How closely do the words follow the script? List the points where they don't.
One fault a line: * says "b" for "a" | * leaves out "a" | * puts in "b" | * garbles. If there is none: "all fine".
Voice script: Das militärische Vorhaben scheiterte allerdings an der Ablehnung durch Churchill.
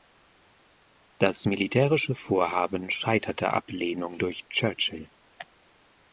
* leaves out "allerdings an der"